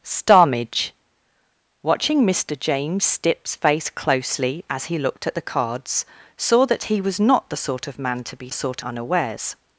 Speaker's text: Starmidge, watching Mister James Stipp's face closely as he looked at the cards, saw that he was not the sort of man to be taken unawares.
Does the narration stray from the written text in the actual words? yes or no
yes